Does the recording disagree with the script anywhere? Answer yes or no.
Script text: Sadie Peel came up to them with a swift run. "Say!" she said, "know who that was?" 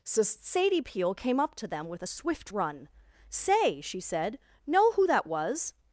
yes